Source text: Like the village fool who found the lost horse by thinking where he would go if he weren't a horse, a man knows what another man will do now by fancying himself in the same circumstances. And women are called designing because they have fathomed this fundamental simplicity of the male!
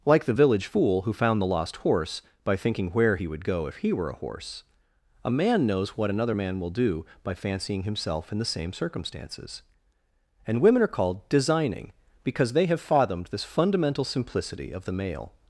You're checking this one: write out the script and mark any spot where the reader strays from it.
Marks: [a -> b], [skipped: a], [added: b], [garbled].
Like the village fool who found the lost horse by thinking where he would go if he [weren't -> were] a horse, a man knows what another man will do [skipped: now] by fancying himself in the same circumstances. And women are called designing because they have fathomed this fundamental simplicity of the male!